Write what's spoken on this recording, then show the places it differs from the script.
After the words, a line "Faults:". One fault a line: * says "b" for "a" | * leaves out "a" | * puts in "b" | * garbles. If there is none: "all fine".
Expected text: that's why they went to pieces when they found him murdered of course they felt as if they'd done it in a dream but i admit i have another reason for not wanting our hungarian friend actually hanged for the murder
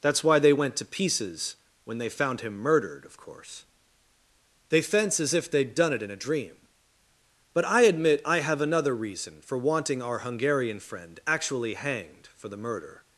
that's why they went to pieces when they found him murdered of course they fence as if they'd done it in a dream but i admit i have another reason for wanting our hungarian friend actually hanged for the murder
Faults:
* says "fence" for "felt"
* leaves out "not"